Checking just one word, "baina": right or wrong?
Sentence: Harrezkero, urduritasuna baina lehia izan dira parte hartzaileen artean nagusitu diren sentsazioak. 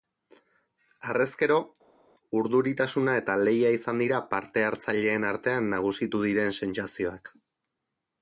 wrong